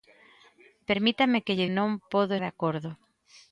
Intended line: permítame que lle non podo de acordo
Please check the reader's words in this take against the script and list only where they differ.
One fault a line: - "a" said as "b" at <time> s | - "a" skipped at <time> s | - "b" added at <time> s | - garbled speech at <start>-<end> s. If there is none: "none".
none